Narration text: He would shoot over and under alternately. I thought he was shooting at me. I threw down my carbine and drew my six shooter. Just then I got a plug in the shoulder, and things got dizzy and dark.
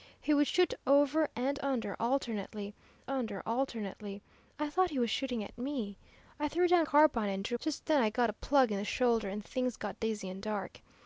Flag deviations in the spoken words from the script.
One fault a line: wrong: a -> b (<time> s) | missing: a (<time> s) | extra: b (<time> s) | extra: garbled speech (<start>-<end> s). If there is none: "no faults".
extra: under alternately (3.1 s)
missing: my (6.9 s)
missing: my six shooter (7.6 s)